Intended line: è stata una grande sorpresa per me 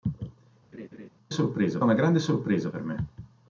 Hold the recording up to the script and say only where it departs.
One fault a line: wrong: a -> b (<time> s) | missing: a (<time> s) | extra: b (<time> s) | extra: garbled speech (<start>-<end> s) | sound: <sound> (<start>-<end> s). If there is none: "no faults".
sound: laugh (0.7-1.1 s)
wrong: stata -> sorpresa (1.3 s)